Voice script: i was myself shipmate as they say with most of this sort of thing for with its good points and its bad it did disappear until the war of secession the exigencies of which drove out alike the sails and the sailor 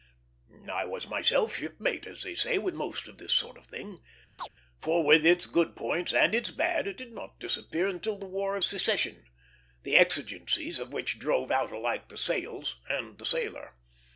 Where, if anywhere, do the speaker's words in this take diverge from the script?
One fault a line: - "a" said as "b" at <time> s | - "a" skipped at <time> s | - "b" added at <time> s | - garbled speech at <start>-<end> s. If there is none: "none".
- "not" added at 7.1 s